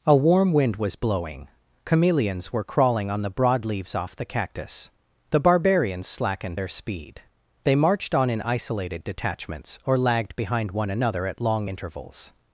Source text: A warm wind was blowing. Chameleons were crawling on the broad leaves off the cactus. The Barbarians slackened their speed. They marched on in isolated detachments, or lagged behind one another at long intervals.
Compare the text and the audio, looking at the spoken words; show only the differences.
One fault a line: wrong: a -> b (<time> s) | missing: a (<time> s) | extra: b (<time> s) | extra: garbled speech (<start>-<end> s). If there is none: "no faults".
no faults